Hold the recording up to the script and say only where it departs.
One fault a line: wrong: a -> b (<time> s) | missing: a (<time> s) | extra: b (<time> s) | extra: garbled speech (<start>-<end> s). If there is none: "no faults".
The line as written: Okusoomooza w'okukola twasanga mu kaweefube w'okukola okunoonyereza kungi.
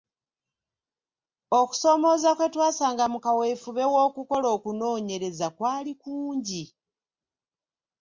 wrong: w'okukola -> kwe (2.4 s)
extra: kwali (5.6 s)